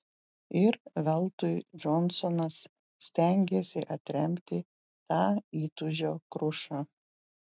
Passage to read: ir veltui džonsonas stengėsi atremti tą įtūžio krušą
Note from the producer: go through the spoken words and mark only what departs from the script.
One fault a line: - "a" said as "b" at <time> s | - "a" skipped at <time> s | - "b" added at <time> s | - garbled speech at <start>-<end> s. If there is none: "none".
none